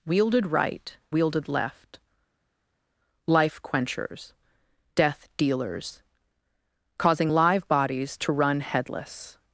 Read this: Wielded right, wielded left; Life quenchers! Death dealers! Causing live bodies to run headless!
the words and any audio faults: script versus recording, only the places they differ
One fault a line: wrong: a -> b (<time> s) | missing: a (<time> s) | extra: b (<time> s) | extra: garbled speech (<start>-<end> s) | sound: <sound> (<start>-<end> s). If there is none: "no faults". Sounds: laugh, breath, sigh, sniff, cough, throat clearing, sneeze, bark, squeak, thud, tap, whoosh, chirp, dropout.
no faults